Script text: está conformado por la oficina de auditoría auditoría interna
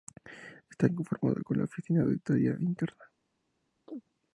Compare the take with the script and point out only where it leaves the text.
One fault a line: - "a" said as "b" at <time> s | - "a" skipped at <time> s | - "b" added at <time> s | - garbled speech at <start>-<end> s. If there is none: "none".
- "auditoría" skipped at 2.6 s